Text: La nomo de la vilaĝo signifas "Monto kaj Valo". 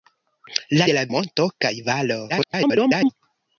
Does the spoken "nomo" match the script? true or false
false